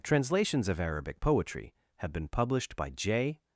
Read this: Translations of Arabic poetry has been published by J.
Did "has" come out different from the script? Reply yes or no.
yes